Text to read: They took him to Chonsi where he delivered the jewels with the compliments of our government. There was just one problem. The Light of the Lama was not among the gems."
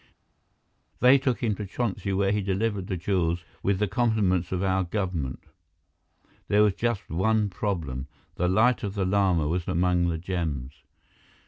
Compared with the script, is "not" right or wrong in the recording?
wrong